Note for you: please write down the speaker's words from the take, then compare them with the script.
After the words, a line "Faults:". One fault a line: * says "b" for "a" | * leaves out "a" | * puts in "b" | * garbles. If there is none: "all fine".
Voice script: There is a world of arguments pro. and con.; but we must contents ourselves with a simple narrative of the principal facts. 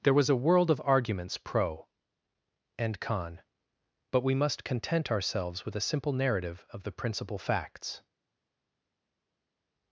There was a world of arguments pro. and con.; but we must content ourselves with a simple narrative of the principal facts.
Faults:
* says "was" for "is"
* says "content" for "contents"